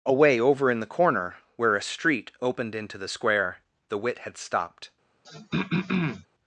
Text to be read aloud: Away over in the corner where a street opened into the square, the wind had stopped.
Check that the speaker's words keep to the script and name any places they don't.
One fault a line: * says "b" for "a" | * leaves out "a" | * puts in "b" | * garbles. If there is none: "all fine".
* says "wit" for "wind"